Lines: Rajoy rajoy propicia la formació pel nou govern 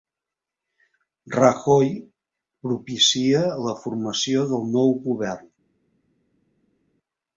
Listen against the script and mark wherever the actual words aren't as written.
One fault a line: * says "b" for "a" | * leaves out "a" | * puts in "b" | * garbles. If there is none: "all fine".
* leaves out "rajoy"
* says "del" for "pel"